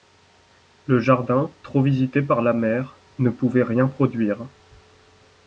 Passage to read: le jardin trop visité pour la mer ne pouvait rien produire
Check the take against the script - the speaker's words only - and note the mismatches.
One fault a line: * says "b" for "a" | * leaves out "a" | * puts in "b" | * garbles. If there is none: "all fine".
* says "par" for "pour"